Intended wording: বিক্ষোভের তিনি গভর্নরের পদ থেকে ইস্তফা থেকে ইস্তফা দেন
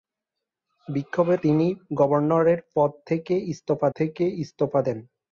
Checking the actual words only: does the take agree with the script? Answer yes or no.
yes